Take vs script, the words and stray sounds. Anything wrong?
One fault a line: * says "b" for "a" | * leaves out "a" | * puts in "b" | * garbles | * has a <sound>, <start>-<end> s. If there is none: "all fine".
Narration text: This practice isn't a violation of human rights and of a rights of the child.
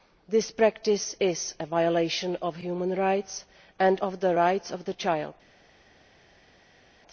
* says "is" for "isn't"
* says "the" for "a"